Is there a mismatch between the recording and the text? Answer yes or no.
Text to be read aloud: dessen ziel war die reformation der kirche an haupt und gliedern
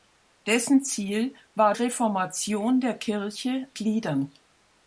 yes